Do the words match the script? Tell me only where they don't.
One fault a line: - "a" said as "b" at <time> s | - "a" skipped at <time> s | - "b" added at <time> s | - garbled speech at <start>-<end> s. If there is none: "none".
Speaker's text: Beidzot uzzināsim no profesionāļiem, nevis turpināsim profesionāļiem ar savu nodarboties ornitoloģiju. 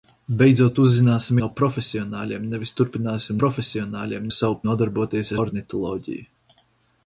none